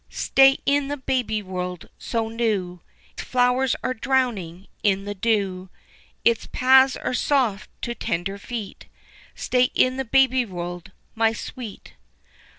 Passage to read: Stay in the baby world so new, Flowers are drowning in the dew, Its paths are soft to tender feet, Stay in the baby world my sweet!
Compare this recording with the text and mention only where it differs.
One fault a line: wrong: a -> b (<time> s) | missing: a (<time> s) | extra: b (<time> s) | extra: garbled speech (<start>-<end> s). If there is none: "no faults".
no faults